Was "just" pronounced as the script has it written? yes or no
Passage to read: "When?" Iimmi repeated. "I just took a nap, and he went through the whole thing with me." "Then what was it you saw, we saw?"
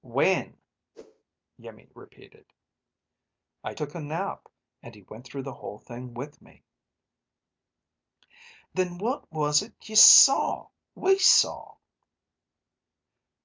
no